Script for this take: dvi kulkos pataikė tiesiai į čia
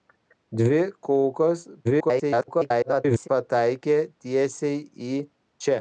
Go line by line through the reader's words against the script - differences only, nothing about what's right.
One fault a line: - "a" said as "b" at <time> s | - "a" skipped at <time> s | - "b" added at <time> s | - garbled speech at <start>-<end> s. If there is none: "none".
- garbled speech at 1.8-3.3 s